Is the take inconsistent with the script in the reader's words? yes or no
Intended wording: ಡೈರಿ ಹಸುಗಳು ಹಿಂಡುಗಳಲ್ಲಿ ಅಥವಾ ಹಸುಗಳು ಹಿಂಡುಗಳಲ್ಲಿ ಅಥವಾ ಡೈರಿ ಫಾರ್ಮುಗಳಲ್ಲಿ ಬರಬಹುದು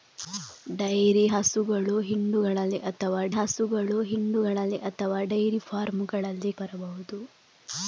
no